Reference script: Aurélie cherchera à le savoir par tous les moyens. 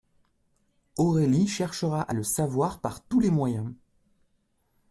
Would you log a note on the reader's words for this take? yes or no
no